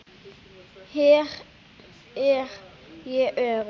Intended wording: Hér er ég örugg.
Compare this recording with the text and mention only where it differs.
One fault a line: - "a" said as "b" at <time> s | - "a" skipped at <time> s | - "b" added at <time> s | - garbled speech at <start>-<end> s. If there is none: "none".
none